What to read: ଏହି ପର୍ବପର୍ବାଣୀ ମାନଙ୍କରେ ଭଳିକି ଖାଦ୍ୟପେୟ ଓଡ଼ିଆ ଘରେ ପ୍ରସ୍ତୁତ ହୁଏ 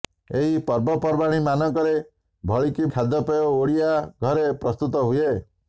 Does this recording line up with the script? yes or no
yes